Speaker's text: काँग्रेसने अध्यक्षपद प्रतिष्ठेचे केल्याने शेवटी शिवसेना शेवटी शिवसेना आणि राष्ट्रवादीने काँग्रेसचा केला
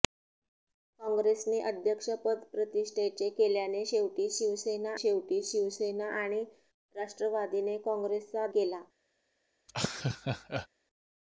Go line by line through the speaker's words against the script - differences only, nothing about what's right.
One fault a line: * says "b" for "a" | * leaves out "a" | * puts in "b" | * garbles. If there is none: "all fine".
all fine